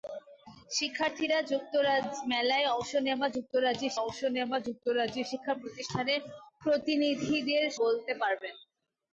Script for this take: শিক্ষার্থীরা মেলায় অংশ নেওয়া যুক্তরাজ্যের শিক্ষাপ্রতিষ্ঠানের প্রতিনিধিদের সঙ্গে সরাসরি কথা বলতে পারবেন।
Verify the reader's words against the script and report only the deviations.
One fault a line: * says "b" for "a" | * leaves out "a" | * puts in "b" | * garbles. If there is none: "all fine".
* says "অংশ নেওয়া যুক্তরাজ্যের শিক্ষাপ্রতিষ্ঠানের প্রতিনিধিদের" for "শিক্ষাপ্রতিষ্ঠানের প্রতিনিধিদের সঙ্গে সরাসরি কথা"